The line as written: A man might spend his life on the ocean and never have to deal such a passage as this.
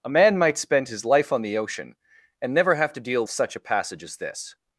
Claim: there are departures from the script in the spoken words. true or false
false